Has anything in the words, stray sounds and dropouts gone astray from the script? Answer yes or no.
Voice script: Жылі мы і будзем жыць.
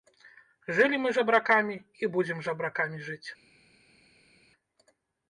yes